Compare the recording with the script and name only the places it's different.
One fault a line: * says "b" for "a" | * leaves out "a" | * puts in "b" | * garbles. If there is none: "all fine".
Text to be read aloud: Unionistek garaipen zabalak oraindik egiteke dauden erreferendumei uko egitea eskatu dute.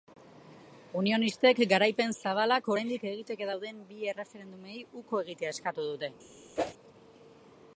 * puts in "bi"